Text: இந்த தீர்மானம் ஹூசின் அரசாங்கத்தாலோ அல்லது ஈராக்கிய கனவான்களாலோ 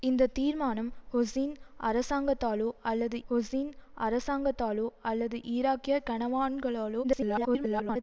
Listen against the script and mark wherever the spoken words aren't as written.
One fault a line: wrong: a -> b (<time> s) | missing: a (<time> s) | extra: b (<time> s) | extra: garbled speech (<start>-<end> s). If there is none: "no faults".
extra: ஹூசின் அரசாங்கத்தாலோ அல்லது (3.3 s)
extra: garbled speech (7.0-8.0 s)